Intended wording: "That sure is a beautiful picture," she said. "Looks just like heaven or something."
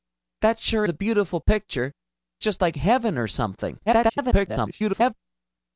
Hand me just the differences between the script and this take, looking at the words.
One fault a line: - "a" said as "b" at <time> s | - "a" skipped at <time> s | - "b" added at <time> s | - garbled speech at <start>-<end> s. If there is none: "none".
- "is" skipped at 0.9 s
- "she said Looks" skipped at 1.9 s
- garbled speech at 3.9-5.1 s